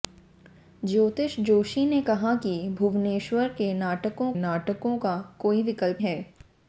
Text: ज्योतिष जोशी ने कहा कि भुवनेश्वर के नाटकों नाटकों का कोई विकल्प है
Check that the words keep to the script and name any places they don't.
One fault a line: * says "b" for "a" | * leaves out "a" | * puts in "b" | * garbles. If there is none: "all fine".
all fine